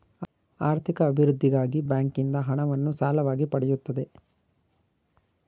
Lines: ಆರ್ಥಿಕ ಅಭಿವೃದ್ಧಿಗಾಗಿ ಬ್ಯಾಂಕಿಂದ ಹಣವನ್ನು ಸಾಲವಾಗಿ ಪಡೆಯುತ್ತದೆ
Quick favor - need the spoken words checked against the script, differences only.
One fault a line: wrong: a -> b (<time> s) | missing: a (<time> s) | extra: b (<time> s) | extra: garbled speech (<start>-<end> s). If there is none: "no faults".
no faults